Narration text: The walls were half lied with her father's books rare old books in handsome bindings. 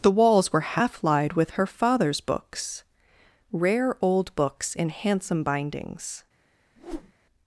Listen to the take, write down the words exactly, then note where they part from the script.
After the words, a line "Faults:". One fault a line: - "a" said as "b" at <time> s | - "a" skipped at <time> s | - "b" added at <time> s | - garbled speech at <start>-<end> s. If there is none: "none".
The walls were half lied with her father's books rare old books in handsome bindings.
Faults:
none